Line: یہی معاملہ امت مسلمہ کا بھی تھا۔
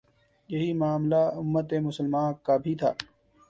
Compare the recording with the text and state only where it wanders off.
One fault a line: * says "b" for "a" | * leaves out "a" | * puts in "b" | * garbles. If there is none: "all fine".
all fine